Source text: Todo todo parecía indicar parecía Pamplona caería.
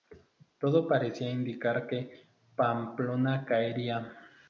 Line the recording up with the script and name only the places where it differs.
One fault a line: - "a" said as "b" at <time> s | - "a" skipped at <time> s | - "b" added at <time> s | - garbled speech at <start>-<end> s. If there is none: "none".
- "todo" skipped at 0.9 s
- "parecía" said as "que" at 1.9 s